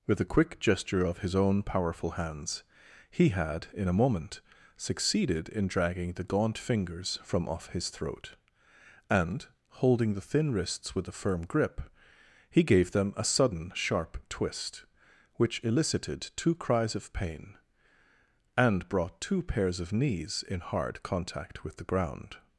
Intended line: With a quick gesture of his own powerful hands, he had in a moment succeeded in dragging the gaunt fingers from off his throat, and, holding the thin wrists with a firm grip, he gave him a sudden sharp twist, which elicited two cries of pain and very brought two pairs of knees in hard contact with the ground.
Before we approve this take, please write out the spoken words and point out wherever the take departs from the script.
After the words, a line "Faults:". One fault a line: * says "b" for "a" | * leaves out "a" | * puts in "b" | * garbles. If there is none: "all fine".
With a quick gesture of his own powerful hands, he had in a moment succeeded in dragging the gaunt fingers from off his throat, and, holding the thin wrists with a firm grip, he gave them a sudden sharp twist, which elicited two cries of pain and brought two pairs of knees in hard contact with the ground.
Faults:
* says "them" for "him"
* leaves out "very"